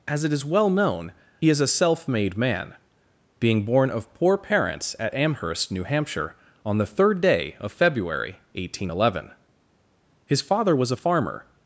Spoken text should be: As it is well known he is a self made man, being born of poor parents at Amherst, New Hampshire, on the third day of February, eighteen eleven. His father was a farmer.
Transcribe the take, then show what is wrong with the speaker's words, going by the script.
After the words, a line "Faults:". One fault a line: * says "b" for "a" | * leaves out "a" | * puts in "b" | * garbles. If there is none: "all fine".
As it is well known he is a self made man, being born of poor parents at Amherst, New Hampshire, on the third day of February, eighteen eleven. His father was a farmer.
Faults:
all fine